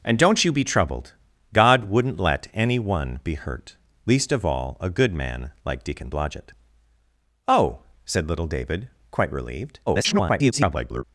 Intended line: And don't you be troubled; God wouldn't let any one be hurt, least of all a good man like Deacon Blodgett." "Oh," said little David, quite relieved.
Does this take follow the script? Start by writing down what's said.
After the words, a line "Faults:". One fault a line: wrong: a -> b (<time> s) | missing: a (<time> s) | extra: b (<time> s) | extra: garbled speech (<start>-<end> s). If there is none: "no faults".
And don't you be troubled; God wouldn't let any one be hurt, least of all a good man like Deacon Blodgett." "Oh," said little David, quite relieved. [garbled]
Faults:
extra: garbled speech (9.9-11.0 s)